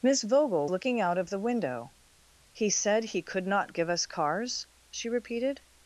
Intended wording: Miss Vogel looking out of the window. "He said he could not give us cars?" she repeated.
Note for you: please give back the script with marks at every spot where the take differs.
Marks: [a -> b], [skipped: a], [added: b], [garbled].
Miss Vogel looking out of the window. "He said he could not give us cars?" she repeated.